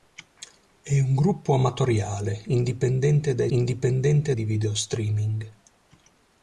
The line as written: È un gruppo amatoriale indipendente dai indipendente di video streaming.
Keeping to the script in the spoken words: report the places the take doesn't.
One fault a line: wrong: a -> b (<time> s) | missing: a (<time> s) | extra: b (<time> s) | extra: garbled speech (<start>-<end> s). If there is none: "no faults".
no faults